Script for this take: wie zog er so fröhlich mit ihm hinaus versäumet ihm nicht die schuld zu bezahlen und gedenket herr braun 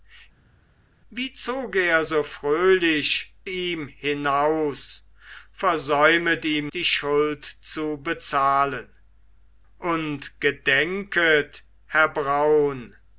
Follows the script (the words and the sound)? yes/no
no